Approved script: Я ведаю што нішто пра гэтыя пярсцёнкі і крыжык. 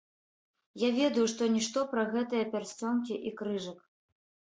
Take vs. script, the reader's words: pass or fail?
pass